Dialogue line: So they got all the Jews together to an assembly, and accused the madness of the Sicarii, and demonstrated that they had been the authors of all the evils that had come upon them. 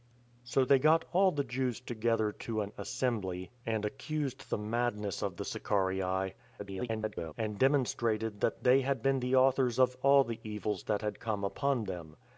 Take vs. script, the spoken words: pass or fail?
fail